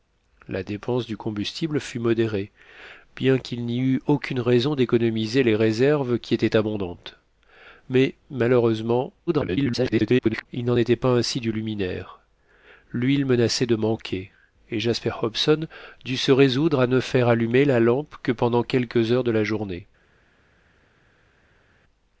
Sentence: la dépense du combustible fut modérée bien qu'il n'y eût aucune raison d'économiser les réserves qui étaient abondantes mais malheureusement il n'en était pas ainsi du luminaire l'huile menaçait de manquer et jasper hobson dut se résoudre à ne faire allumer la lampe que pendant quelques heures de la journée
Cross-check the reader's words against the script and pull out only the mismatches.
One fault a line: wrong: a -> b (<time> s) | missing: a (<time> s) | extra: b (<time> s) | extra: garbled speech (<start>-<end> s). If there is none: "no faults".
extra: garbled speech (9.3-10.5 s)